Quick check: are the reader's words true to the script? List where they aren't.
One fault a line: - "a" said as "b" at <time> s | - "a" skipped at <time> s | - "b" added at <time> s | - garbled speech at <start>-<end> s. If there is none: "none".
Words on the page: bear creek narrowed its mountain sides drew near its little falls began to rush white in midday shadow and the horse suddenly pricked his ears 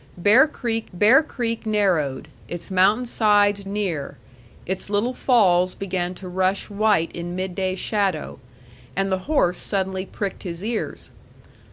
- "bear creek" added at 0.9 s
- "drew" skipped at 3.6 s